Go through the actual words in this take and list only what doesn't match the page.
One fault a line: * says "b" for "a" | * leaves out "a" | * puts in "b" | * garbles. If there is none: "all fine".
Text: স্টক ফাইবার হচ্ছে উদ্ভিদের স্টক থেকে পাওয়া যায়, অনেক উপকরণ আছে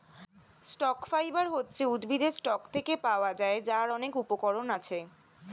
* puts in "যার"